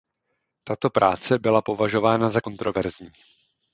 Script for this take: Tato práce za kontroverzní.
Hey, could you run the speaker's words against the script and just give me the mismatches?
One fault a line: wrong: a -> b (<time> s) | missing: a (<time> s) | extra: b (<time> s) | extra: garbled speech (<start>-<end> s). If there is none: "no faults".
extra: byla považována (1.4 s)